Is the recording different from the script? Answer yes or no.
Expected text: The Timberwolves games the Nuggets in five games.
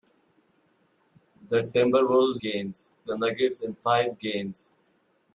no